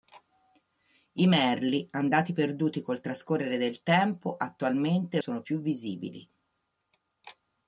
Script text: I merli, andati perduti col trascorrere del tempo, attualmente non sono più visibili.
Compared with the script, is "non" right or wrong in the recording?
wrong